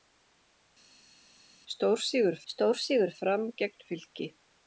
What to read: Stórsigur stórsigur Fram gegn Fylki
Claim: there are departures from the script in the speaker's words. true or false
false